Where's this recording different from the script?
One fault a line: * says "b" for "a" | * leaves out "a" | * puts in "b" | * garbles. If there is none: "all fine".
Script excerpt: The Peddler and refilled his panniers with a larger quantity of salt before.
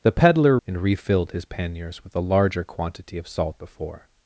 all fine